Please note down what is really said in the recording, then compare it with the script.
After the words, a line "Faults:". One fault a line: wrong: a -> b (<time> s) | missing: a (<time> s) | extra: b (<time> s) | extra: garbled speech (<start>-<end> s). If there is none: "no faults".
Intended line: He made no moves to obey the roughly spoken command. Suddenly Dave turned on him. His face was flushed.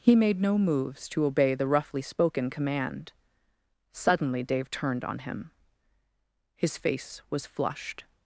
He made no moves to obey the roughly spoken command. Suddenly Dave turned on him. His face was flushed.
Faults:
no faults